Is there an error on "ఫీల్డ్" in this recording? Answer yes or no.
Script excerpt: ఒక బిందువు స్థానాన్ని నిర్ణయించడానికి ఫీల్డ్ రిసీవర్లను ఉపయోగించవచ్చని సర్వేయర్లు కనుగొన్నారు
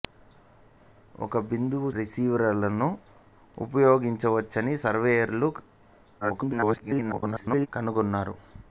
yes